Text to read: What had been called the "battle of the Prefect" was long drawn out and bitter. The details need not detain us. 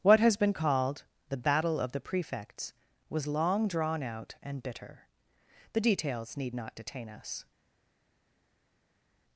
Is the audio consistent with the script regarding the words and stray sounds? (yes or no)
no